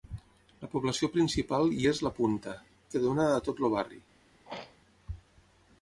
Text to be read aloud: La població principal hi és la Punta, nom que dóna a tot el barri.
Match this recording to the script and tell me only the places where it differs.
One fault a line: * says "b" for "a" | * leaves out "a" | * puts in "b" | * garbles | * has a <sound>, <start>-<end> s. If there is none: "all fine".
* leaves out "nom"
* has a throat clearing, 4.5-4.8 s